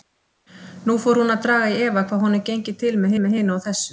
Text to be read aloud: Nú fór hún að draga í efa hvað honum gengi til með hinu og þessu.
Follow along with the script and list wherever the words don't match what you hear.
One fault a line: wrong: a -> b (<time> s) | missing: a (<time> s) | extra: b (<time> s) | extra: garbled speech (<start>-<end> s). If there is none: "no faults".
extra: með (3.2 s)